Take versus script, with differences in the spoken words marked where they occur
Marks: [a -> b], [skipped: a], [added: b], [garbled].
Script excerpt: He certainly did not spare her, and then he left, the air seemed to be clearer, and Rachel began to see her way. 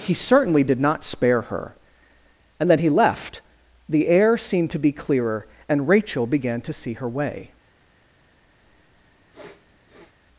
He certainly did not spare her, and then he left, the air seemed to be clearer, and Rachel began to see her way.